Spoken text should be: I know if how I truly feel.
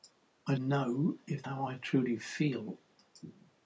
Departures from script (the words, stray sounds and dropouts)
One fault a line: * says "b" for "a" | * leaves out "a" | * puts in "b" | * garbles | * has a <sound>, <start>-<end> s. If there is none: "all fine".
all fine